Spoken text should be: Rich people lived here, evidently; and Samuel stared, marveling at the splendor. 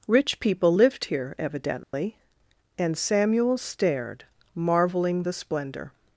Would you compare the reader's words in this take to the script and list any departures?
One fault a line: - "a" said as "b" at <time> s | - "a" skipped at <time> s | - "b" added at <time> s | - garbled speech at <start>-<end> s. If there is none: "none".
- "at" skipped at 5.2 s